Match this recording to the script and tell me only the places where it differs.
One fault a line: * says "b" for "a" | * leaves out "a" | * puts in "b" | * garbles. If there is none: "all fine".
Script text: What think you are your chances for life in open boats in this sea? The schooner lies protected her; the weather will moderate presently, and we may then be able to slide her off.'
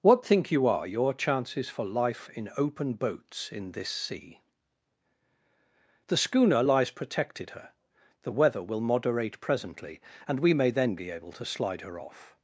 all fine